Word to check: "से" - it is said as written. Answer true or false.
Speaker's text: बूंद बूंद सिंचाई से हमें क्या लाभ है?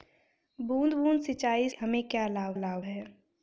false